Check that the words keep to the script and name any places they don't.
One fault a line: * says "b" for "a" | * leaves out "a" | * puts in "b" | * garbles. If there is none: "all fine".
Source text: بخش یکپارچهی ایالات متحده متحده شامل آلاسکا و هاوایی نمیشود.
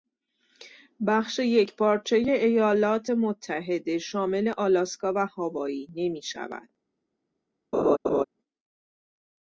* leaves out "متحده"